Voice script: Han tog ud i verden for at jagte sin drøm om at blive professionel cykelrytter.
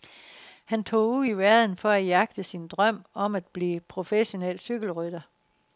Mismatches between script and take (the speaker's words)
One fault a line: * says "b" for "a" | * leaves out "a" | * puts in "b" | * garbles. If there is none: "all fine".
all fine